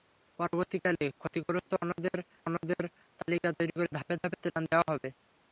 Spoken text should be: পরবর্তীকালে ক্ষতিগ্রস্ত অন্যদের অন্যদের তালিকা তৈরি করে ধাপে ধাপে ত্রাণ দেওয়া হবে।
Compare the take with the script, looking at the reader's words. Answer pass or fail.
pass